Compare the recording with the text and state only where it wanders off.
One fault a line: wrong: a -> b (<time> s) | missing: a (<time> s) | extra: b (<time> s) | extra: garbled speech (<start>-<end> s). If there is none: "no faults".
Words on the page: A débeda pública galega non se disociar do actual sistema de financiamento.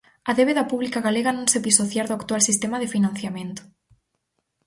no faults